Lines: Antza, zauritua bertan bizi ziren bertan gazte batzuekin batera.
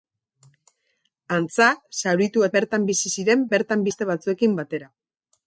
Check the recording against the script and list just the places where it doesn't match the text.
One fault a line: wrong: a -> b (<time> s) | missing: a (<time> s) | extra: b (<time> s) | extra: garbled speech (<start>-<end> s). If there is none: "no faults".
no faults